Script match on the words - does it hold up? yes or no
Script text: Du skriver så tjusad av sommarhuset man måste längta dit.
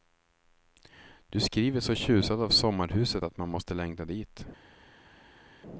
no